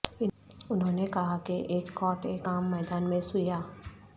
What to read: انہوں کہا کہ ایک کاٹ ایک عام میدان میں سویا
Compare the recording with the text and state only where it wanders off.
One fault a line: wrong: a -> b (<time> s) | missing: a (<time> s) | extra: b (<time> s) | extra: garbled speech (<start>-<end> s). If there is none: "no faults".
extra: نے (0.9 s)